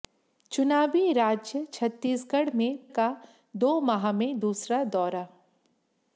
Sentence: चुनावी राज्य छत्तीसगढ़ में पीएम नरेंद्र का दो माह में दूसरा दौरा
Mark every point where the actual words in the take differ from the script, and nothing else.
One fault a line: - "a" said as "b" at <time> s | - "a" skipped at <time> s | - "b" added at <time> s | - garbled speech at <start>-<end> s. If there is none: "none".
- "पीएम नरेंद्र" skipped at 2.9 s